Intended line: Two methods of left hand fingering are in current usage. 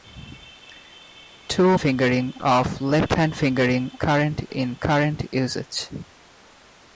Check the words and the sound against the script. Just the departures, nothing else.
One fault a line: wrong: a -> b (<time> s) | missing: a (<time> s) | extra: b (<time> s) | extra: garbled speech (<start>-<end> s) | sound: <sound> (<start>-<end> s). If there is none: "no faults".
wrong: methods -> fingering (1.8 s)
wrong: are -> current (4.0 s)